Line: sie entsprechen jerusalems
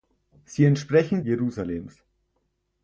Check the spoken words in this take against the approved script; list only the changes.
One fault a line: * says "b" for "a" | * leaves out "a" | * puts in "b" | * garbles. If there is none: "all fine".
all fine